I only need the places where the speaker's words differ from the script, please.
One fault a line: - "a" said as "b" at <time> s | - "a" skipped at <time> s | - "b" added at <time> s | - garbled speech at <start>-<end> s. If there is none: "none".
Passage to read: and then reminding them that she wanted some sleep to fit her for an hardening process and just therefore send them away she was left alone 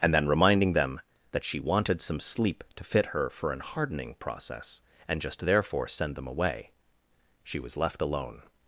none